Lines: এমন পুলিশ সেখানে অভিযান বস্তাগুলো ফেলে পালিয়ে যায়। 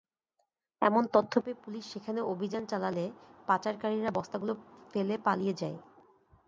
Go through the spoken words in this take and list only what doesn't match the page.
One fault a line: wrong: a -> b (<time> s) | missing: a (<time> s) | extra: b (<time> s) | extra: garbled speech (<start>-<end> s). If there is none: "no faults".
extra: তথ্য পেয়ে (1.1 s)
extra: চালালে পাচারকারীরা (2.6 s)